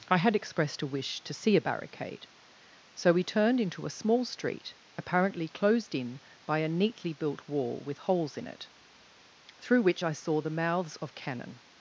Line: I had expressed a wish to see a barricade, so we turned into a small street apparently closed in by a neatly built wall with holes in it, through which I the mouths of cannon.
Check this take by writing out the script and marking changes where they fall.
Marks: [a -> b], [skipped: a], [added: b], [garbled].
I had expressed a wish to see a barricade, so we turned into a small street apparently closed in by a neatly built wall with holes in it, through which I [added: saw] the mouths of cannon.